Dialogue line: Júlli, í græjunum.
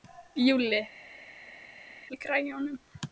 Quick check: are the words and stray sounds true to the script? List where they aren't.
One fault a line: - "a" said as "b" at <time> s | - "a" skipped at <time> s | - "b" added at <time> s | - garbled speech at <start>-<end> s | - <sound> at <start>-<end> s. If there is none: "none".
none